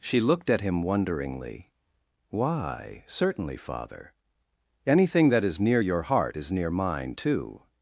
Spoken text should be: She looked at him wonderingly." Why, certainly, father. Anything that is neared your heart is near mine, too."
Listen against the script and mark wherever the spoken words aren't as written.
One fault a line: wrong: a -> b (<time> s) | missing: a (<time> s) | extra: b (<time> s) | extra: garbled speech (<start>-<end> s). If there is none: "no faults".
wrong: neared -> near (5.6 s)